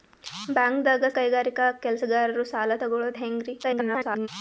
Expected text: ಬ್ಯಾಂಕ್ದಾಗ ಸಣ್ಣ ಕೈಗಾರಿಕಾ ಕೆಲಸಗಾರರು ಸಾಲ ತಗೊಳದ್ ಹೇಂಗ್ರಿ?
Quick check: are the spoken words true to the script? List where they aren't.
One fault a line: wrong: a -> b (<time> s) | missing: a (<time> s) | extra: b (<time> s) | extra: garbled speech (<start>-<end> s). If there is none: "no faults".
missing: ಸಣ್ಣ (1.0 s)
extra: garbled speech (3.6-4.3 s)